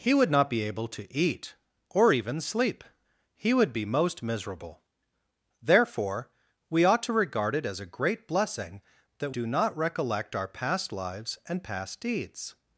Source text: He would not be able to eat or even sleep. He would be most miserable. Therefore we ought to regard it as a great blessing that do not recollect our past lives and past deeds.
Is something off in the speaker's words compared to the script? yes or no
no